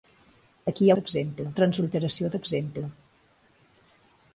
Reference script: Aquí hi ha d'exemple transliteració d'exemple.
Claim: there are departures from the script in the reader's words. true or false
false